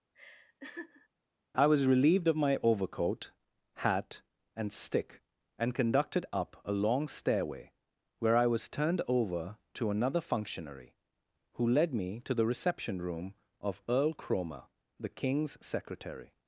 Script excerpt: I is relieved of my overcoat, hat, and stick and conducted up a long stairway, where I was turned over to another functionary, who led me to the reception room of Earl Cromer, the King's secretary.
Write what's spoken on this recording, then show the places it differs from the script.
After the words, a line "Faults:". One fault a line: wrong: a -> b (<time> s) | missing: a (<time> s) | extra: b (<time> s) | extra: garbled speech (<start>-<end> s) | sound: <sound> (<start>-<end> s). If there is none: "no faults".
I was relieved of my overcoat, hat, and stick and conducted up a long stairway, where I was turned over to another functionary, who led me to the reception room of Earl Cromer, the King's secretary.
Faults:
sound: laugh (0.1-1.1 s)
wrong: is -> was (1.7 s)